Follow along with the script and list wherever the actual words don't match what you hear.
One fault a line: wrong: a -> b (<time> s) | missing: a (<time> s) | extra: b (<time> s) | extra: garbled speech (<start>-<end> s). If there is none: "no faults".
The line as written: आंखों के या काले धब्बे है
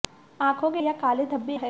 no faults